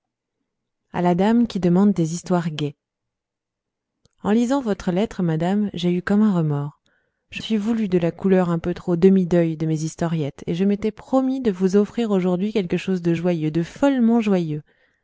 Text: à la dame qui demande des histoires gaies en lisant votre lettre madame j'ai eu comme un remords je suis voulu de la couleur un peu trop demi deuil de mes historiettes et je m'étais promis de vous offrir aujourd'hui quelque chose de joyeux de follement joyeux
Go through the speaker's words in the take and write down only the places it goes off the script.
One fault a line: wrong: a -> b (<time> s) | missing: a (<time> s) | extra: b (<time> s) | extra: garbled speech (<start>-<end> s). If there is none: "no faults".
no faults